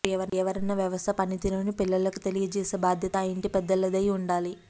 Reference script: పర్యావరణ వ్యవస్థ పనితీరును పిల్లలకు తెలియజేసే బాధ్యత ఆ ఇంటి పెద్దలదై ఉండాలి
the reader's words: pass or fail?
pass